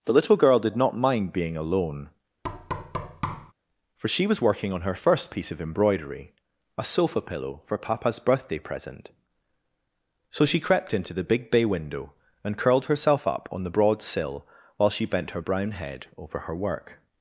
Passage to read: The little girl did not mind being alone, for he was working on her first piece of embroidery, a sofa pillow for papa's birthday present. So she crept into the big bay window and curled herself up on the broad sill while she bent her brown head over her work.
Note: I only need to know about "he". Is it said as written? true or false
false